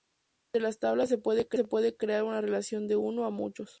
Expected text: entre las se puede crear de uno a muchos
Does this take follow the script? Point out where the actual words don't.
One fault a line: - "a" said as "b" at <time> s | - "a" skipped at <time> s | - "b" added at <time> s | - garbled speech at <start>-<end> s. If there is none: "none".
- "tablas" added at 0.8 s
- "una relación" added at 2.2 s